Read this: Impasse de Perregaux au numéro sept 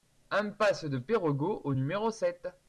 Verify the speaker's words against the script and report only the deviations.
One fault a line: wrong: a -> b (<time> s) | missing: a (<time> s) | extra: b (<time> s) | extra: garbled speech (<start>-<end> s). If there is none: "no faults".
no faults